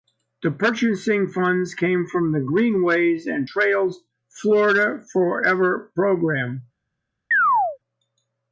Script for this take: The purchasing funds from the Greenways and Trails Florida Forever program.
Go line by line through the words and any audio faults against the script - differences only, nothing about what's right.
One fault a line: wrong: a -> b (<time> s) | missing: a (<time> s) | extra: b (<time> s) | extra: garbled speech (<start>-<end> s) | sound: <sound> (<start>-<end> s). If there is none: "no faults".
extra: came (1.8 s)
sound: chirp (7.3-7.8 s)